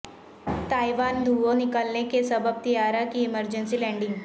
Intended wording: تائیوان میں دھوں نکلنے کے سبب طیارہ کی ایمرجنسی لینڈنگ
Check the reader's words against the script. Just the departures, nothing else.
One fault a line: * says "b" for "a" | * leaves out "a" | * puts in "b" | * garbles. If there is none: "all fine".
* leaves out "میں"